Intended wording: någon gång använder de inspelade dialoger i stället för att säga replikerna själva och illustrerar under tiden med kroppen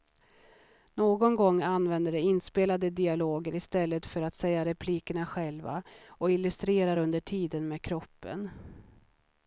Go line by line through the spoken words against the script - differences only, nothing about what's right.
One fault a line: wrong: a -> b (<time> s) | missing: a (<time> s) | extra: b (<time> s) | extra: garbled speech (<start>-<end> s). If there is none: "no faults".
no faults